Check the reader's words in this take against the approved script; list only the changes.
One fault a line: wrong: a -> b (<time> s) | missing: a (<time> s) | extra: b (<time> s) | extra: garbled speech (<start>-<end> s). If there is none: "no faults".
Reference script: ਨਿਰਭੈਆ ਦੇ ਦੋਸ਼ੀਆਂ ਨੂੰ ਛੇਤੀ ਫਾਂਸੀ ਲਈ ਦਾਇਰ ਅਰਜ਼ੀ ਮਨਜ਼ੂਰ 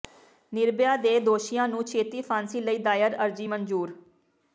no faults